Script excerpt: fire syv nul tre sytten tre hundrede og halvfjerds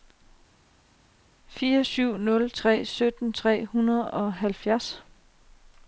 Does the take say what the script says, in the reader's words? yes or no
yes